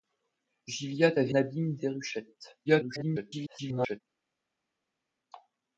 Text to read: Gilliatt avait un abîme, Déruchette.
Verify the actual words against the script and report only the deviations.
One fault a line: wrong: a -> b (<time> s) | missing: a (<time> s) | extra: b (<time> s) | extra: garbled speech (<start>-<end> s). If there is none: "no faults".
missing: un (1.3 s)
extra: garbled speech (2.7-4.0 s)